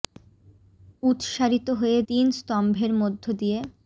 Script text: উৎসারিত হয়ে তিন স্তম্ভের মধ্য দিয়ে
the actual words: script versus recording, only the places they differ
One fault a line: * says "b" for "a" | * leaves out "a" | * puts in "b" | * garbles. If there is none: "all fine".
all fine